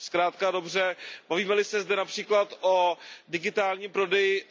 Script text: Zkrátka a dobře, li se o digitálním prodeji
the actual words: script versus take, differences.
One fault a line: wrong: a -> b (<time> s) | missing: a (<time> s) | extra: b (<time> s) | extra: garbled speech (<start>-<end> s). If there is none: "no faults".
extra: bavíme (1.3 s)
extra: zde například (1.8 s)